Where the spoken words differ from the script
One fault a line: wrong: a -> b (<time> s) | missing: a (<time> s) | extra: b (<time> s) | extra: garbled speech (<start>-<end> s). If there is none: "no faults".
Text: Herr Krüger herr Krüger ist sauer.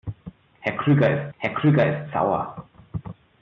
no faults